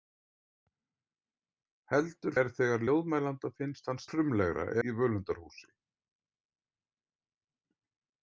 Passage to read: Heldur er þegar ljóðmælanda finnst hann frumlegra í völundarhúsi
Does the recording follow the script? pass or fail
pass